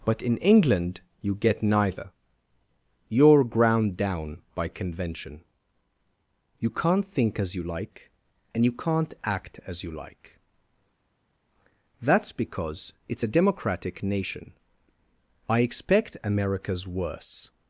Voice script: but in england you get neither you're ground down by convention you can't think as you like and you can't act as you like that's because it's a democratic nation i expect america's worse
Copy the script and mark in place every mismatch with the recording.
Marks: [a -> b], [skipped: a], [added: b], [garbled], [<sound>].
but in england you get neither you're ground down by convention you can't think as you like and you can't act as you like that's because it's a democratic nation i expect america's worse